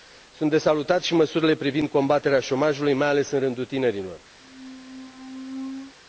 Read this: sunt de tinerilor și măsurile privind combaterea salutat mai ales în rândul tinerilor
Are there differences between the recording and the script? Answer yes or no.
yes